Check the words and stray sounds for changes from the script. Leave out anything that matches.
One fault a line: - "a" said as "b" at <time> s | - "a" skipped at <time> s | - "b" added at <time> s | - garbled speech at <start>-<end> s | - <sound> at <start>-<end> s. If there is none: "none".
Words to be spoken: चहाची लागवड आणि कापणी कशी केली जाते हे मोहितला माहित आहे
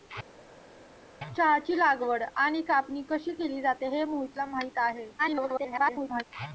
- garbled speech at 5.2-6.2 s